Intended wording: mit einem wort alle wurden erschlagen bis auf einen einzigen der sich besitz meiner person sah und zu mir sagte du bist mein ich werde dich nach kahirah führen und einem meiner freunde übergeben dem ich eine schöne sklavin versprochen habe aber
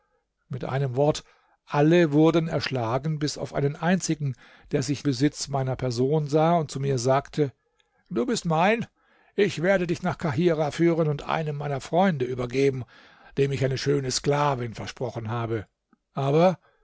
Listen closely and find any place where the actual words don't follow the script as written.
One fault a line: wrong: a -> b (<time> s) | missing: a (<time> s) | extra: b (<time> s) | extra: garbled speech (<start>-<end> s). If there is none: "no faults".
no faults